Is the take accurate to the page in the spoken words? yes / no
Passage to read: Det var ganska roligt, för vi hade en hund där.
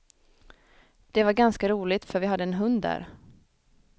yes